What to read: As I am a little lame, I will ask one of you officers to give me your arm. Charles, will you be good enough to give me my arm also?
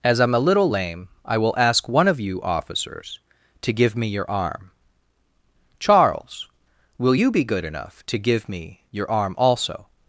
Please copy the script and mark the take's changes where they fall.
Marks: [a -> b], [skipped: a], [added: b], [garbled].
As I am a little lame, I will ask one of you officers to give me your arm. Charles, will you be good enough to give me [my -> your] arm also?